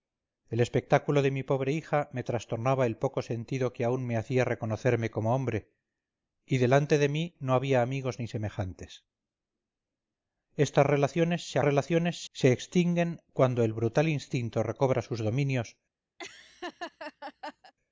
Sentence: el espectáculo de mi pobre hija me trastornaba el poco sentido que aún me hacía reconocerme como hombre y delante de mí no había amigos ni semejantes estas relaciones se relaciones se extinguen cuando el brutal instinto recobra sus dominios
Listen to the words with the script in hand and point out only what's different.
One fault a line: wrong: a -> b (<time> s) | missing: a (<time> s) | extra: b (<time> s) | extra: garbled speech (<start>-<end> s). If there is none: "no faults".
no faults